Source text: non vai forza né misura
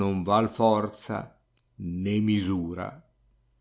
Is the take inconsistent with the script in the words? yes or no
no